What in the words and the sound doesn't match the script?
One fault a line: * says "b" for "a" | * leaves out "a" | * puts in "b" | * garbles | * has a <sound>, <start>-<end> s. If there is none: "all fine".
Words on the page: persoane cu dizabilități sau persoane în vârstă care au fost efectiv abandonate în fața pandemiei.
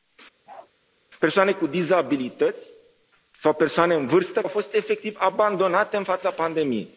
* has a bark, 0.5-0.7 s
* leaves out "care"